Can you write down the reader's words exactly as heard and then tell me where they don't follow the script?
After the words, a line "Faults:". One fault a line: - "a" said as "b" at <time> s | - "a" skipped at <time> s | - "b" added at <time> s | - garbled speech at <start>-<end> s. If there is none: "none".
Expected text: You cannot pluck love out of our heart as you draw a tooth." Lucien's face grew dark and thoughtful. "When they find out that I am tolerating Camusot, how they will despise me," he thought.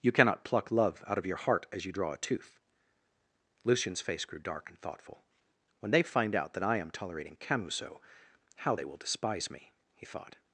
You cannot pluck love out of your heart as you draw a tooth." Lucien's face grew dark and thoughtful. "When they find out that I am tolerating Camusot, how they will despise me," he thought.
Faults:
- "our" said as "your" at 1.2 s